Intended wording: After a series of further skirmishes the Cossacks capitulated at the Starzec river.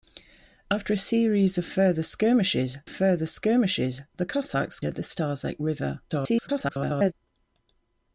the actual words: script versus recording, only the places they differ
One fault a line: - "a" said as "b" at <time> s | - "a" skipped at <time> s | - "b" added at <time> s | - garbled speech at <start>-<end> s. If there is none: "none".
- "further skirmishes" added at 2.9 s
- "capitulated" skipped at 4.8 s
- garbled speech at 6.1-7.1 s